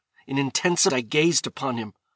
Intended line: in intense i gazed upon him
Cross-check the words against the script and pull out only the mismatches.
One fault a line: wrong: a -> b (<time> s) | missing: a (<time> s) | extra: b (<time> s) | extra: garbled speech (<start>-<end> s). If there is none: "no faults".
no faults